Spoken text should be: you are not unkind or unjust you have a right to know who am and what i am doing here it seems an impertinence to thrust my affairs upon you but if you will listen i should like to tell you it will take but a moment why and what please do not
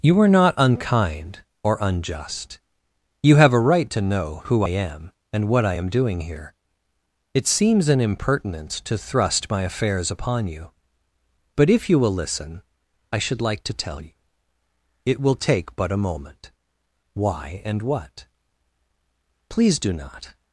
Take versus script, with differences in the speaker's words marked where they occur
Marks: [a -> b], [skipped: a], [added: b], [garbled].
you are not unkind or unjust you have a right to know who am and what i am doing here it seems an impertinence to thrust my affairs upon you but if you will listen i should like to tell you it will take but a moment why and what please do not